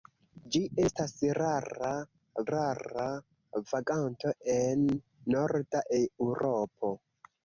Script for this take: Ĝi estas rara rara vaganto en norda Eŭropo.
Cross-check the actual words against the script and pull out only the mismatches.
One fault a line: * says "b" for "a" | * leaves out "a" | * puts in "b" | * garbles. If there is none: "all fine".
all fine